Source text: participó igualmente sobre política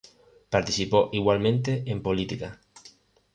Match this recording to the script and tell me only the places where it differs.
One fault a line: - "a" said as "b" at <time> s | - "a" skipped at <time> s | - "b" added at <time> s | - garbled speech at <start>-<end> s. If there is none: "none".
- "sobre" said as "en" at 1.9 s